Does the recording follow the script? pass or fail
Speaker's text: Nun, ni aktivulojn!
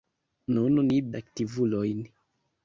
pass